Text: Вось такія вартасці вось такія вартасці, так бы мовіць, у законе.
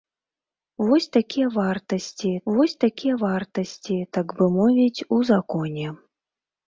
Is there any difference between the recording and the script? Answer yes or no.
no